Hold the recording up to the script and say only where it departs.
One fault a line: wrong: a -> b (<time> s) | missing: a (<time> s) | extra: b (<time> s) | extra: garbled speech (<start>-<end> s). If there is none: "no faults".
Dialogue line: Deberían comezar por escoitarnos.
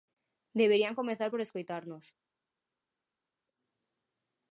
no faults